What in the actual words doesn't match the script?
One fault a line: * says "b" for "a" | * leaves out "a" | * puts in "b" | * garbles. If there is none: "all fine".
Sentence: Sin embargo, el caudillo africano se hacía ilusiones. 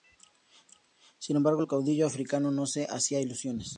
* puts in "no"